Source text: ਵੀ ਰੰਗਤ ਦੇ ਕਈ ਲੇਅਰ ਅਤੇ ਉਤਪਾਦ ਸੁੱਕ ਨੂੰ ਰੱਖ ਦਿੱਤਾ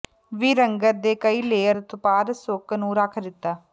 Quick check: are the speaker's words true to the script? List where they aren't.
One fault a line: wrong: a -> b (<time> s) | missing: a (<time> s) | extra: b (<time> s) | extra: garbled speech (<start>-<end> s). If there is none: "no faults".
no faults